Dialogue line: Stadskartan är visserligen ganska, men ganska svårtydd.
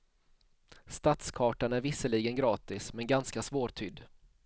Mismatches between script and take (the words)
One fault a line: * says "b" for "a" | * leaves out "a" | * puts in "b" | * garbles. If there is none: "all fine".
* says "gratis" for "ganska"